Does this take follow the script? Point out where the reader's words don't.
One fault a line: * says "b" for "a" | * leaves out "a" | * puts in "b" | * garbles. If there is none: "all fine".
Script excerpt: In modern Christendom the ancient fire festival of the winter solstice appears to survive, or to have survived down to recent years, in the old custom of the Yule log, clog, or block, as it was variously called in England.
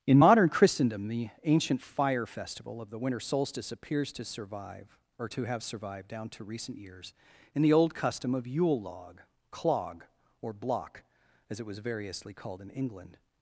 * leaves out "the"